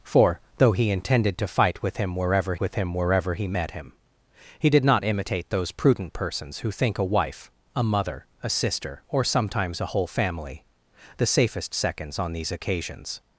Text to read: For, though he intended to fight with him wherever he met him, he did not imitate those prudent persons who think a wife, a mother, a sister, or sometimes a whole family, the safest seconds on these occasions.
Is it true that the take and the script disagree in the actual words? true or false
true